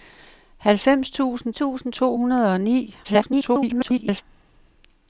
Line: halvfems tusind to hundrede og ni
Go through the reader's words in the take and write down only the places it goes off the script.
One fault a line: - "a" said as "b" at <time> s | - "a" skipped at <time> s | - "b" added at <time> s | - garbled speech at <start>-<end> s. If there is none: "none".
- "tusind" added at 1.5 s
- garbled speech at 3.0-4.2 s